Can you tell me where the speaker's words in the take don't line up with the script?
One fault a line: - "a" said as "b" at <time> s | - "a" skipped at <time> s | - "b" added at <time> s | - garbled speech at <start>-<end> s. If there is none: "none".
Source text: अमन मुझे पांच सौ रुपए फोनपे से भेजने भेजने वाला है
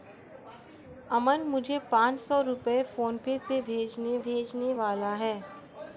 none